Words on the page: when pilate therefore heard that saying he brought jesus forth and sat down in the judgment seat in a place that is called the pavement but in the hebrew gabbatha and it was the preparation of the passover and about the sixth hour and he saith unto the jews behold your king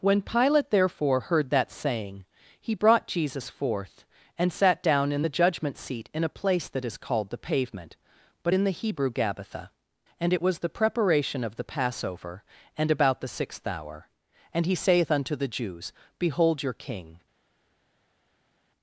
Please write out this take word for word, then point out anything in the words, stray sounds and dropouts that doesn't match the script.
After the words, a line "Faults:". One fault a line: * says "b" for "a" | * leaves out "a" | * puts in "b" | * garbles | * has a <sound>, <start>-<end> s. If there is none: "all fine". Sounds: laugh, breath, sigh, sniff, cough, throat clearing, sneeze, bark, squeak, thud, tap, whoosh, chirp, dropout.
when pilate therefore heard that saying he brought jesus forth and sat down in the judgment seat in a place that is called the pavement but in the hebrew gabbatha and it was the preparation of the passover and about the sixth hour and he saith unto the jews behold your king
Faults:
all fine